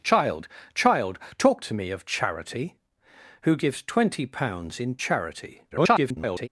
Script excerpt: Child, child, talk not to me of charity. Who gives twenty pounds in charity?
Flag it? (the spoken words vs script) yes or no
yes